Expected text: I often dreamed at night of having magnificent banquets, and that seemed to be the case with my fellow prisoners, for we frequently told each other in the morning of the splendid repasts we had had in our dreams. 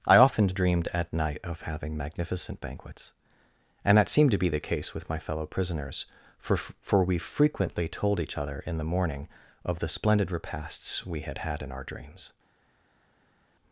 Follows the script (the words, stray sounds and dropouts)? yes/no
no